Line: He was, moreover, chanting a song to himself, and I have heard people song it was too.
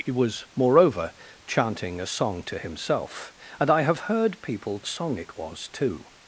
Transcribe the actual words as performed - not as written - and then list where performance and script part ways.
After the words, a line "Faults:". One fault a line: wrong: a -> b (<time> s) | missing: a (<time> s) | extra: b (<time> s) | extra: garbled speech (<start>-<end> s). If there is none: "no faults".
He was, moreover, chanting a song to himself, and I have heard people song it was too.
Faults:
no faults